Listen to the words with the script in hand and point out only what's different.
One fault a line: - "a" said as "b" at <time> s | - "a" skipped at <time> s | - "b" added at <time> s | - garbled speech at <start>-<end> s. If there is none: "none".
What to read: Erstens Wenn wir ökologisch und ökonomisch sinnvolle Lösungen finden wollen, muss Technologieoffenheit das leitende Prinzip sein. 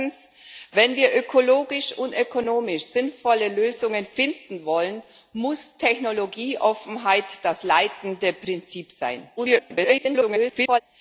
- garbled speech at 9.4-10.8 s